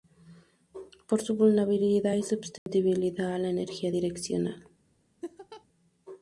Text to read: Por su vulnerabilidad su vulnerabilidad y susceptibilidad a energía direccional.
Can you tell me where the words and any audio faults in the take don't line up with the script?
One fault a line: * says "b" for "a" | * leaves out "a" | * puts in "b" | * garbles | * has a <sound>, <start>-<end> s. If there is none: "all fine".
* leaves out "su vulnerabilidad"
* has a dropout, 2.6-2.7 s
* puts in "la"
* has a laugh, 5.2-5.7 s